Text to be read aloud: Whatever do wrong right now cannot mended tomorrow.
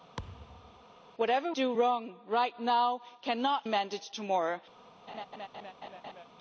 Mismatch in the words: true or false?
false